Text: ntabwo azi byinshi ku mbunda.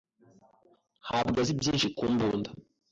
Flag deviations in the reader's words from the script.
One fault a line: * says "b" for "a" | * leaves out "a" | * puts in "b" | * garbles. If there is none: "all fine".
all fine